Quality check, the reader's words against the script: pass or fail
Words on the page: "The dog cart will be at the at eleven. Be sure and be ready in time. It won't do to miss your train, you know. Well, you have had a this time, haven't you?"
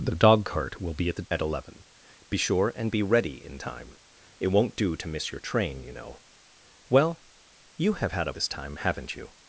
pass